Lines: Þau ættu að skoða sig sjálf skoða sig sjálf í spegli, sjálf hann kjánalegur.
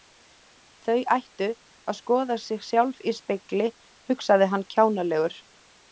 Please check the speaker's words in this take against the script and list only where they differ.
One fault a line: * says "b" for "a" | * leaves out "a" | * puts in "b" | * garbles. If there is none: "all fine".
* leaves out "skoða sig sjálf"
* says "hugsaði" for "sjálf"